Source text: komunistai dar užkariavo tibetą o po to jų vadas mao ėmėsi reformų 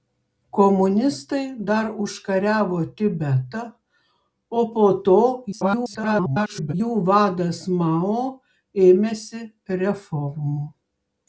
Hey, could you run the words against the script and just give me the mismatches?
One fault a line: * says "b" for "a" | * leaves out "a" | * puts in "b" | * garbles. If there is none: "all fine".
* garbles